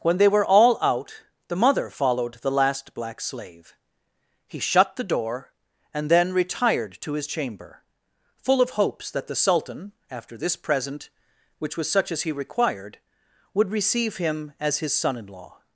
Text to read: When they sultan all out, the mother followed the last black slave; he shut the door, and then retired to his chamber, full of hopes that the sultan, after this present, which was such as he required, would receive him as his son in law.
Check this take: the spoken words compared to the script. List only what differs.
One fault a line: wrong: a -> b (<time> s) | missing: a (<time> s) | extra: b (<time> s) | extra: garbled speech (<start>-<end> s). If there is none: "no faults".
wrong: sultan -> were (0.3 s)